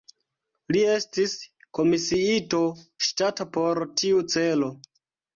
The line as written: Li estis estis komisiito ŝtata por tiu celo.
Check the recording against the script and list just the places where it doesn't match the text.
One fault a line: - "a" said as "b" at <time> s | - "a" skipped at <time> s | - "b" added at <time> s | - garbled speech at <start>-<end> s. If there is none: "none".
- "estis" skipped at 1.3 s